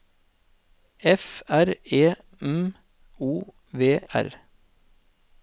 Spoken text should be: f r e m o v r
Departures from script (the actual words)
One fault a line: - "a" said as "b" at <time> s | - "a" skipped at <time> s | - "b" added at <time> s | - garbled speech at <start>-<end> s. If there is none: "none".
none